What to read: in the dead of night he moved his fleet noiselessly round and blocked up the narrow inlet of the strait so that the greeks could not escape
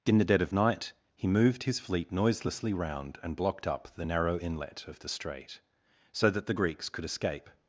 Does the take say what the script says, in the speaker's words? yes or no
no